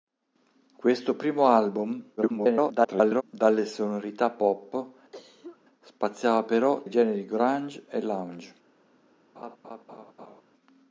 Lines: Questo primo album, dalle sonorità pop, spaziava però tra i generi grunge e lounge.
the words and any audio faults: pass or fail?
fail